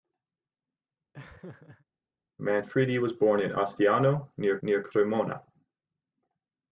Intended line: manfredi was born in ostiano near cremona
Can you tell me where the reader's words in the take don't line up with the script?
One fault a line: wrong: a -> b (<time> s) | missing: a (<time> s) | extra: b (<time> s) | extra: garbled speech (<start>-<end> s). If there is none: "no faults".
extra: near (4.6 s)